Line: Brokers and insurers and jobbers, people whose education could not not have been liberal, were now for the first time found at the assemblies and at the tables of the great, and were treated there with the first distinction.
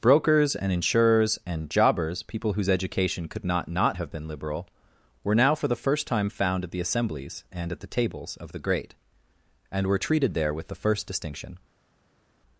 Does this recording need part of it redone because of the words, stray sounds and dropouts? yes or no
no